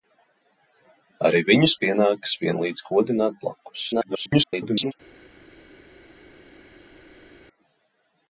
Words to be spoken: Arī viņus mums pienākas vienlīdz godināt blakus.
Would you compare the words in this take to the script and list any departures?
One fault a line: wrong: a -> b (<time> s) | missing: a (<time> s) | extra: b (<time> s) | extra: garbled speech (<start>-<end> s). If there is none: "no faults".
missing: mums (1.8 s)
extra: garbled speech (3.9-4.9 s)